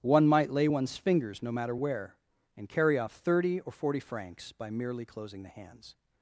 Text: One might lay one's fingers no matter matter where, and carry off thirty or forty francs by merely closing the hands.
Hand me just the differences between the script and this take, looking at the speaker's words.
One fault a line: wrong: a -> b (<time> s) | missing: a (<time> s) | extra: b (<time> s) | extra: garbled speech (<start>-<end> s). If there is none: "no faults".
missing: matter (1.8 s)